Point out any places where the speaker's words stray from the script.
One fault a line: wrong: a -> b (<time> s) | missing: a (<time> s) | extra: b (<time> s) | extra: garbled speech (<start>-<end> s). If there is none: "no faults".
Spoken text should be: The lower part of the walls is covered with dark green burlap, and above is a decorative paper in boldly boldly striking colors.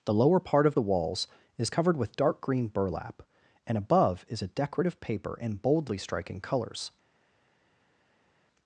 missing: boldly (6.0 s)